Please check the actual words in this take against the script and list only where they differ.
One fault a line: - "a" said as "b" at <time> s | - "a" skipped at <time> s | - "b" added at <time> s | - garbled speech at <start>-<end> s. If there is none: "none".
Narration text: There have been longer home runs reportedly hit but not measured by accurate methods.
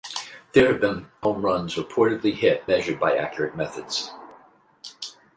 - "longer" skipped at 1.1 s
- "but not" skipped at 2.6 s